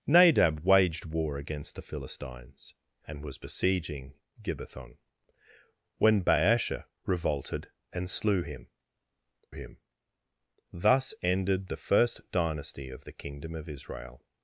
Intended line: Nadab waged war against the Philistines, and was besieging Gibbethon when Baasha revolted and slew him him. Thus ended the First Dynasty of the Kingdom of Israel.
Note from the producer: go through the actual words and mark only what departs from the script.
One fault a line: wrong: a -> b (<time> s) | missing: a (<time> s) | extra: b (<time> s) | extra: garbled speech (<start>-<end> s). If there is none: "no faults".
no faults